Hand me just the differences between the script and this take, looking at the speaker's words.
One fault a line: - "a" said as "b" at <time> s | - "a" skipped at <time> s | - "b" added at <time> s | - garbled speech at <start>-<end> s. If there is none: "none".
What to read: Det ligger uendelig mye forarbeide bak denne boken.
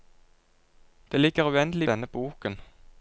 - "mye forarbeide bak" skipped at 1.9 s